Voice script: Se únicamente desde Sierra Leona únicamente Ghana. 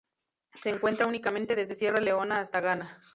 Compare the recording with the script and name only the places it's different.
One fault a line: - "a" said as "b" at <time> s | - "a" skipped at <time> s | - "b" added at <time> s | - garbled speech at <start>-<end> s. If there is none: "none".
- "encuentra" added at 0.7 s
- "únicamente" said as "hasta" at 2.4 s